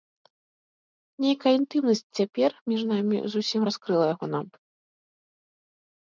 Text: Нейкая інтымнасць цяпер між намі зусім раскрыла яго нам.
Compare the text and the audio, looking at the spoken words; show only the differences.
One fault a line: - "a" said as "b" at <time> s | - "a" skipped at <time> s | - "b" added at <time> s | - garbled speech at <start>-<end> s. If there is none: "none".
none